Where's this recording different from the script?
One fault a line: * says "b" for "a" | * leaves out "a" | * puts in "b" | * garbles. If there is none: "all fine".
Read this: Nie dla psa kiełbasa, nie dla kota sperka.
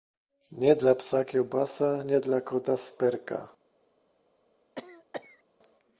all fine